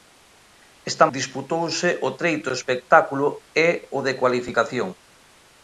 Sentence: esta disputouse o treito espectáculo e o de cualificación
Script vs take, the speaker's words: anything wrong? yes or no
no